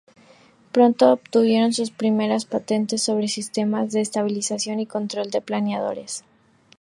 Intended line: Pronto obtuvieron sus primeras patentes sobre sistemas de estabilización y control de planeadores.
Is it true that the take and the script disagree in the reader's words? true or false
false